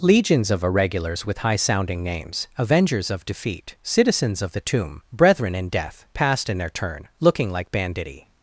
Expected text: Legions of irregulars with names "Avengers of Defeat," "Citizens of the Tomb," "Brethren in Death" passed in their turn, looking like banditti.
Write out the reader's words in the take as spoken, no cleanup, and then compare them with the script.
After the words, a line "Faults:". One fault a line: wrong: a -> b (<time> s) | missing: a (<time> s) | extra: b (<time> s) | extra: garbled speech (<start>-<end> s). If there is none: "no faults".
Legions of irregulars with high sounding names "Avengers of Defeat," "Citizens of the Tomb," "Brethren in Death" passed in their turn, looking like banditti.
Faults:
extra: high sounding (1.4 s)